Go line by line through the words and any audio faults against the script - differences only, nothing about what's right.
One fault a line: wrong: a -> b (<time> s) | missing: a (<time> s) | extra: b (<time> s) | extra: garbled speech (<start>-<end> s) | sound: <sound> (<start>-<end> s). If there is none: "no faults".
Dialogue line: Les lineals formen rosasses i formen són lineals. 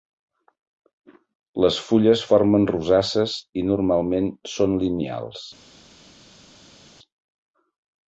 wrong: lineals -> fulles (1.9 s)
wrong: formen -> normalment (3.7 s)